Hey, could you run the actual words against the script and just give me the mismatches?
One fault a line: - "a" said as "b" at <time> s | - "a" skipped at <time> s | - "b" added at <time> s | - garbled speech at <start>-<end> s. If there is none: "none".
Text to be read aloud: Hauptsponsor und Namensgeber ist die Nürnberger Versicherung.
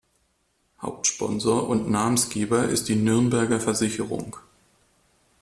none